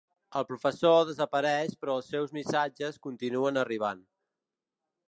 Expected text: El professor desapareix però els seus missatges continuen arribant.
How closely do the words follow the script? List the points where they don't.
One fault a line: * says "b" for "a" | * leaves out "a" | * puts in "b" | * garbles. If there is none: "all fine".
all fine